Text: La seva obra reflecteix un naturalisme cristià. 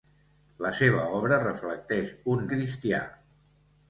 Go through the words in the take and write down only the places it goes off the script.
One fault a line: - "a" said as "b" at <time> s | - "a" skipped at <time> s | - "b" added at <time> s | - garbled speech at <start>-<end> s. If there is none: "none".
- "naturalisme" skipped at 2.4 s